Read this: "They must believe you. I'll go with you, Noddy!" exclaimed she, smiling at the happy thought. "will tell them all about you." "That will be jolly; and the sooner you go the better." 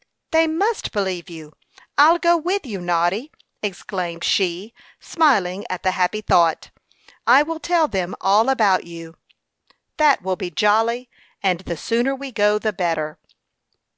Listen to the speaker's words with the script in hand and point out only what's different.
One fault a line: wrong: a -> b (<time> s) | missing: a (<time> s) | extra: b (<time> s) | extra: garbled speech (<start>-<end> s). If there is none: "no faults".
extra: I (7.3 s)
wrong: you -> we (12.1 s)